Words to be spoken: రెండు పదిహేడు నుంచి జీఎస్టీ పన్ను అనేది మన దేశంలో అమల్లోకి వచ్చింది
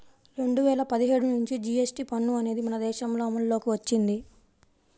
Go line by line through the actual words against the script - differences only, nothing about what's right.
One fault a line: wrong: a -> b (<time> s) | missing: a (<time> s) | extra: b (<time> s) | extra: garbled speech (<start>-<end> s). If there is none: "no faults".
extra: వేల (0.6 s)